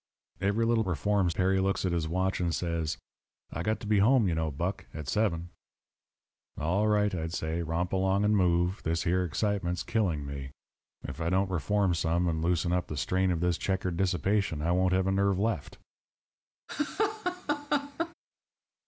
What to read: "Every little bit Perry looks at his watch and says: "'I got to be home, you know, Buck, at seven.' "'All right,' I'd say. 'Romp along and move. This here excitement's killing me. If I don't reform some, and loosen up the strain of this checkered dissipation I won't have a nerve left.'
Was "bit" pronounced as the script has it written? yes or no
no